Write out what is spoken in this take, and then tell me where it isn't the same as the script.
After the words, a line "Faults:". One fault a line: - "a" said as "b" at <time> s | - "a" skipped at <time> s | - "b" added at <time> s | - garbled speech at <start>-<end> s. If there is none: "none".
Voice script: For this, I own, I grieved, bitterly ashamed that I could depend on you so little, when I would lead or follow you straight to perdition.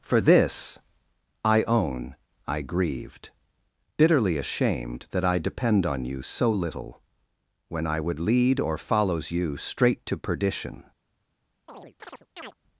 For this, I own, I grieved, bitterly ashamed that I depend on you so little, when I would lead or follows you straight to perdition.
Faults:
- "could" skipped at 5.4 s
- "follow" said as "follows" at 8.8 s